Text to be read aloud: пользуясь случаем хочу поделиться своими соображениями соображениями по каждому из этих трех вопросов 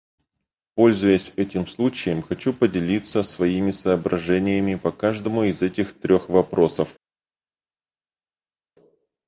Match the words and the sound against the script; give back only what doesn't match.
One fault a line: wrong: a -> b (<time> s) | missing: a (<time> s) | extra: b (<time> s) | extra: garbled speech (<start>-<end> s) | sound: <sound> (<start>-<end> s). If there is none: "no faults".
extra: этим (1.4 s)
missing: соображениями (4.7 s)